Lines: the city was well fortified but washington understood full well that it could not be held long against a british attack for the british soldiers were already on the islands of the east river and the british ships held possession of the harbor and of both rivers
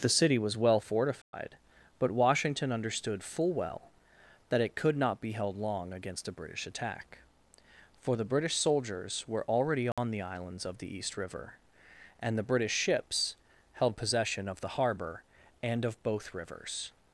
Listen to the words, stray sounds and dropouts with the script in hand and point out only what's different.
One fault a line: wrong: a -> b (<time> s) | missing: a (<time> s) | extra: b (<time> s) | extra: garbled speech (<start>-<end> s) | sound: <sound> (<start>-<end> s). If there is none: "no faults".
sound: dropout (1.2-1.3 s)
sound: dropout (9.9-10.0 s)